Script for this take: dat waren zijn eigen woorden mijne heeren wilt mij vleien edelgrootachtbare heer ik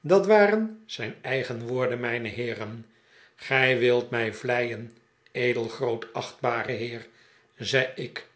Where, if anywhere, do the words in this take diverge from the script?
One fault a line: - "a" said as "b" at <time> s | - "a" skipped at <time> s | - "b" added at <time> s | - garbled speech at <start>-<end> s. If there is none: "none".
- "gij" added at 3.4 s
- "zei" added at 7.6 s